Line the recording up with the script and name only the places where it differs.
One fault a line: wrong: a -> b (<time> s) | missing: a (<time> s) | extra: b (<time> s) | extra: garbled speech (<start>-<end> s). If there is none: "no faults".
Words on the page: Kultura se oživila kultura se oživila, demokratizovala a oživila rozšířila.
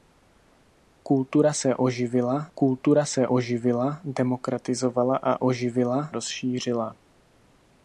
no faults